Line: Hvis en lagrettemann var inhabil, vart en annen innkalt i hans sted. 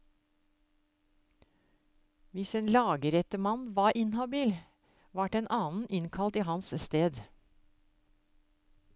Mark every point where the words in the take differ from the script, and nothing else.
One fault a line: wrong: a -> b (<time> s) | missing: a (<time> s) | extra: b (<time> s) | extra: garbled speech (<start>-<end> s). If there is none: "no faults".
no faults